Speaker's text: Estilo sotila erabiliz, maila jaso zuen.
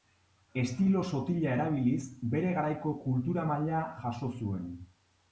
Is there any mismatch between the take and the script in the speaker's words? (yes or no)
yes